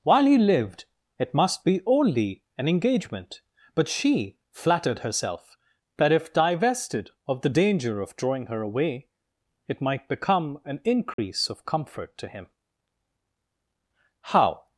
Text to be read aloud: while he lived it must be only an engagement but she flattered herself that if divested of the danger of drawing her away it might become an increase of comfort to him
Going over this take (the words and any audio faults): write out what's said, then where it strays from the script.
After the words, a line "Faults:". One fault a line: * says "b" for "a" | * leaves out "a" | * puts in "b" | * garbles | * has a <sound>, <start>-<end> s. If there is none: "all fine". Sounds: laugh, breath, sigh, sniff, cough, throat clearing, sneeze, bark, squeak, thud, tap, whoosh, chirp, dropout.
while he lived it must be only an engagement but she flattered herself that if divested of the danger of drawing her away it might become an increase of comfort to him how
Faults:
* has a dropout, 11.1-11.2 s
* puts in "how"